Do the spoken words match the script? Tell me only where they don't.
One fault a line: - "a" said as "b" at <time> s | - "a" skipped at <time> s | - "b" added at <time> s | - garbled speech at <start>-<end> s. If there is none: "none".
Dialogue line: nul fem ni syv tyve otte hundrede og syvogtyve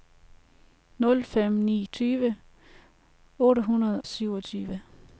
- "syv" skipped at 1.9 s
- "og" skipped at 4.0 s